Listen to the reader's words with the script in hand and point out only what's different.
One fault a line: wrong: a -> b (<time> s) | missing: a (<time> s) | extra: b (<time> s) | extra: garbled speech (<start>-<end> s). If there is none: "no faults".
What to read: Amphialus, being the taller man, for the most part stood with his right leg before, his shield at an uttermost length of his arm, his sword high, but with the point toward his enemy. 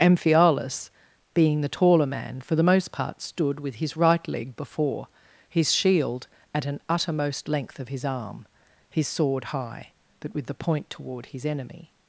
no faults